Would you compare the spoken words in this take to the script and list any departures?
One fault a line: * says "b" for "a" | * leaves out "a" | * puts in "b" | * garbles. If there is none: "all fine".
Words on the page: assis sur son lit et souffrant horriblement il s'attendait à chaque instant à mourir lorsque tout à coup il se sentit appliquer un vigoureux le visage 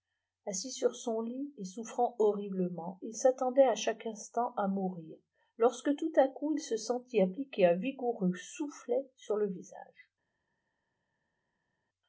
* puts in "soufflet sur"